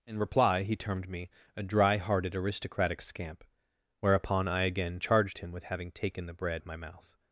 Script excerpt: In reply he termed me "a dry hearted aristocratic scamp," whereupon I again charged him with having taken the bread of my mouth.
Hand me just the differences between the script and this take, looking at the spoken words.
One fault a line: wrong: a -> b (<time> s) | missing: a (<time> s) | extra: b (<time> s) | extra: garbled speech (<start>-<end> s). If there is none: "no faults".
no faults